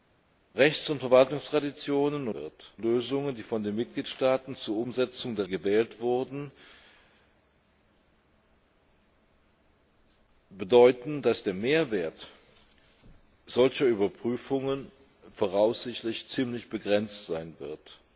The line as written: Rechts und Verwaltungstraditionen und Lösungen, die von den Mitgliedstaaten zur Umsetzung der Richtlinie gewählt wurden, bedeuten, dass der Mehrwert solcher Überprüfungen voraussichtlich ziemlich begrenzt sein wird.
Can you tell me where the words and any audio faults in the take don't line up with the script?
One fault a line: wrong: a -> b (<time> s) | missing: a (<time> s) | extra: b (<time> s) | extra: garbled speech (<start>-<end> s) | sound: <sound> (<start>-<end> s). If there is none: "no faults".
wrong: und -> wird (2.3 s)
missing: Richtlinie (5.5 s)